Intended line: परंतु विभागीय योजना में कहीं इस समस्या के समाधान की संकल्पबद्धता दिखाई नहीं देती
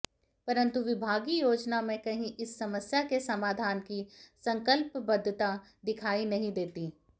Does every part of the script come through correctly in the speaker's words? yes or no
yes